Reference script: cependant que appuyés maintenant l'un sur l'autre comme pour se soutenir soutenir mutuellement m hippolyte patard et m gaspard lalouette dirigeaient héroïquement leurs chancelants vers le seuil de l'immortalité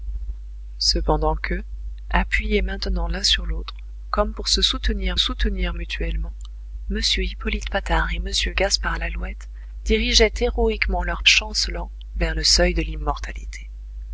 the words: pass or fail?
pass